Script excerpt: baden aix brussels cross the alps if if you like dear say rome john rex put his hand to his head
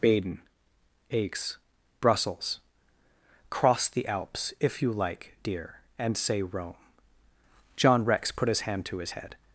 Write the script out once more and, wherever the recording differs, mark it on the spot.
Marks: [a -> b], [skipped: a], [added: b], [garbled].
baden aix brussels cross the alps if [skipped: if] you like dear [added: and] say rome john rex put his hand to his head